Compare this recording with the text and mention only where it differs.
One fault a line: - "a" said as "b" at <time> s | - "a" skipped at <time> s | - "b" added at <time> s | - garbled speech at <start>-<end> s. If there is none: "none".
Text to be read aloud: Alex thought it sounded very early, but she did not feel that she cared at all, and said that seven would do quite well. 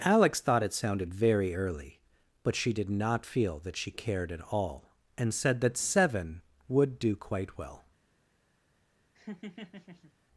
none